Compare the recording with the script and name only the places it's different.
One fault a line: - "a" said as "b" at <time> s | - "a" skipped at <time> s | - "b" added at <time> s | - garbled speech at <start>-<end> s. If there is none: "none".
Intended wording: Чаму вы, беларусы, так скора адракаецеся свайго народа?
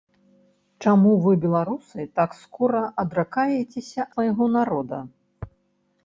none